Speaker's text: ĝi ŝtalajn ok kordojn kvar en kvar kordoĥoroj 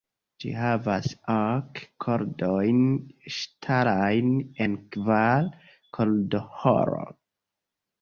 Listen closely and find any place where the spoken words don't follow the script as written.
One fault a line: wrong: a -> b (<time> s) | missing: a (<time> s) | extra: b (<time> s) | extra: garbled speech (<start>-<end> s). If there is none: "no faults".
wrong: ŝtalajn -> havas (0.6 s)
wrong: kvar -> ŝtalajn (3.4 s)